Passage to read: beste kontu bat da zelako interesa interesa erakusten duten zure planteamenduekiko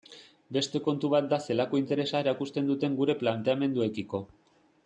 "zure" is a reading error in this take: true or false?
true